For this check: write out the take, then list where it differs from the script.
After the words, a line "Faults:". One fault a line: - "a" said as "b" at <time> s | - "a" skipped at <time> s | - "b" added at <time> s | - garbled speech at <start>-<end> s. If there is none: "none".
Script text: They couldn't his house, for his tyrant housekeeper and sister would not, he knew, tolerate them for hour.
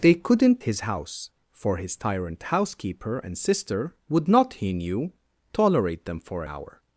They couldn't his house, for his tyrant housekeeper and sister would not, he knew, tolerate them for hour.
Faults:
none